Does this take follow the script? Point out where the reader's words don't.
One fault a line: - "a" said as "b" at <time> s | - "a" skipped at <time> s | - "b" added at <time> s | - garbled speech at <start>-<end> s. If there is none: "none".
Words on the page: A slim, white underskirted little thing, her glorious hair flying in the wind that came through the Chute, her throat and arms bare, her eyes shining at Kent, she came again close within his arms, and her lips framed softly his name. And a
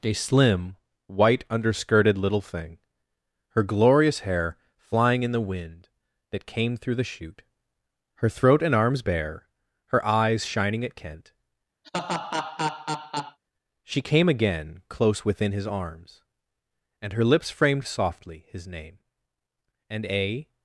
none